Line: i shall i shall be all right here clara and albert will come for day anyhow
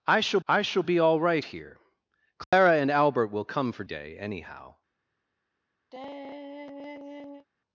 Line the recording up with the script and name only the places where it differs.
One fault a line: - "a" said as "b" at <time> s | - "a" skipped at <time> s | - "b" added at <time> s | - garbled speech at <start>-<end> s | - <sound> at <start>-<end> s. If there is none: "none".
- dropout at 2.4-2.5 s
- sigh at 5.9-7.5 s